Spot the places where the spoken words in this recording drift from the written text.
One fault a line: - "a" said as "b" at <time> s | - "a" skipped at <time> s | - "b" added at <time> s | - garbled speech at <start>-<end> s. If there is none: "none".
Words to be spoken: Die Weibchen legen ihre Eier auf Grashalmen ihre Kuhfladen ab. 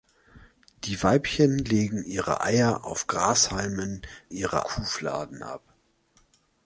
none